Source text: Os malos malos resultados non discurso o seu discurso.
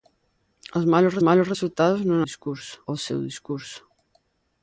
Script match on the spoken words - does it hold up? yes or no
yes